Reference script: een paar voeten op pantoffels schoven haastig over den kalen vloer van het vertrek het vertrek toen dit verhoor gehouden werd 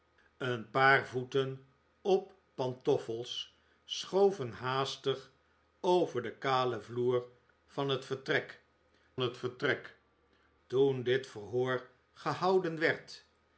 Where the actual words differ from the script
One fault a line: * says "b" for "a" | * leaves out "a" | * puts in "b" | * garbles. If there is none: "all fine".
all fine